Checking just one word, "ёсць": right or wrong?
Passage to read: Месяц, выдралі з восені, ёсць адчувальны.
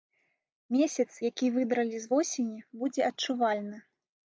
wrong